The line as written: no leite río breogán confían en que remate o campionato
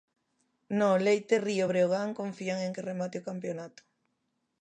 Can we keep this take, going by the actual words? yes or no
yes